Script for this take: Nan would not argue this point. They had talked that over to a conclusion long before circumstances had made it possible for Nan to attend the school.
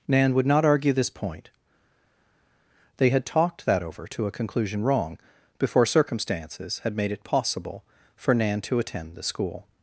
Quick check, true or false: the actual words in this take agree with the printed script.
false